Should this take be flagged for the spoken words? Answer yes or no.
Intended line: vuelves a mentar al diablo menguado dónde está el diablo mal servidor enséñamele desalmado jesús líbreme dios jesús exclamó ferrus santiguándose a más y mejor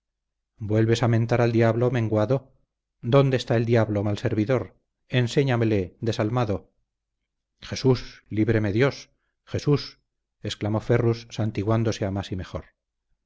no